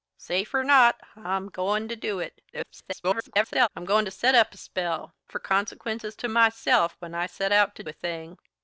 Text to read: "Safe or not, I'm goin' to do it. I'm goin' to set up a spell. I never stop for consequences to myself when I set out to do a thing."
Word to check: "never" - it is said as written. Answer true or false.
false